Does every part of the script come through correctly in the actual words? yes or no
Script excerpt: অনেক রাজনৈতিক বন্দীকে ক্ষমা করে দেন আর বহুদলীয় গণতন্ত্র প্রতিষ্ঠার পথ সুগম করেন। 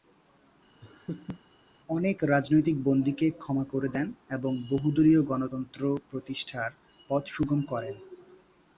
no